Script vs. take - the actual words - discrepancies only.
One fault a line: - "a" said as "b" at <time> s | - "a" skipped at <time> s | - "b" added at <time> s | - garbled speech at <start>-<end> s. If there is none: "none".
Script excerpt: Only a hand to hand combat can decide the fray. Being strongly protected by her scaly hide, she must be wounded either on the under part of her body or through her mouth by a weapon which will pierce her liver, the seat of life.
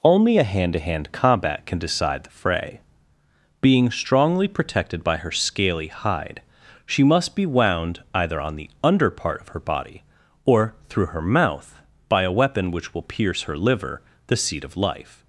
- "wounded" said as "wound" at 7.4 s